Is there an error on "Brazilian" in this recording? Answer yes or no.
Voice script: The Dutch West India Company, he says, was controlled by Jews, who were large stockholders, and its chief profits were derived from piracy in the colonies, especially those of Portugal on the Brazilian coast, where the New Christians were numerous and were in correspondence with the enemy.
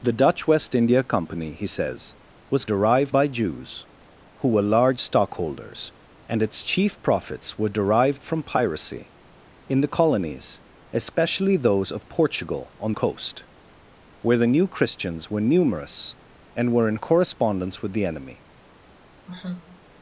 yes